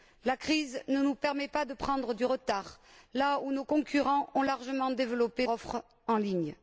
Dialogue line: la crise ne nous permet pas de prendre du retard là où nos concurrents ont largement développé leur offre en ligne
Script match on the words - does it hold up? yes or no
no